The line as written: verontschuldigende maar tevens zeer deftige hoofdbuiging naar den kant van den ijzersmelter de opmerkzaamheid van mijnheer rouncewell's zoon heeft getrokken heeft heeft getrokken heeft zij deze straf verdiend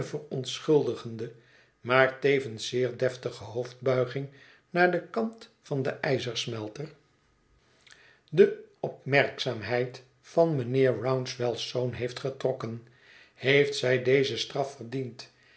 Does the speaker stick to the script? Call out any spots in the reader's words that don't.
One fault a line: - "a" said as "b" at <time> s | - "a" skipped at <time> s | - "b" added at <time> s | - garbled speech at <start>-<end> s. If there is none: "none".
- "heeft getrokken heeft" skipped at 13.8 s